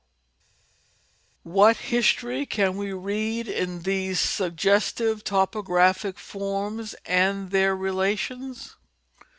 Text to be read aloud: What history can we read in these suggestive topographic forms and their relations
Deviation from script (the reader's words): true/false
false